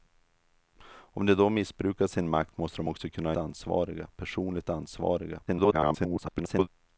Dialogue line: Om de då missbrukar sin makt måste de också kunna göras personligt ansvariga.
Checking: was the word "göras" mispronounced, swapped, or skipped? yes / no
yes